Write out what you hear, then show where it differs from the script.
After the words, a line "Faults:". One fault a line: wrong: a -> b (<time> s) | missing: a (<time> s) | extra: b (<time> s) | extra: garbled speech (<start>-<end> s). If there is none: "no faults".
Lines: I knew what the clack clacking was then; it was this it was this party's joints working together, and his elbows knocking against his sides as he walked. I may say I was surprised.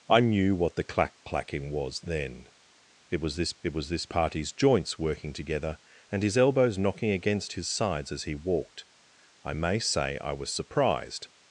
I knew what the clack clacking was then; it was this it was this party's joints working together, and his elbows knocking against his sides as he walked. I may say I was surprised.
Faults:
no faults